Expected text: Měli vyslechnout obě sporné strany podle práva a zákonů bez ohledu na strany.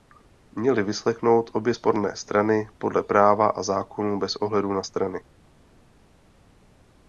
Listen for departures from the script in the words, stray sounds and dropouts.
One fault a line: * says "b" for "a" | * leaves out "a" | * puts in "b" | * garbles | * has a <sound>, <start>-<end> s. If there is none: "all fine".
all fine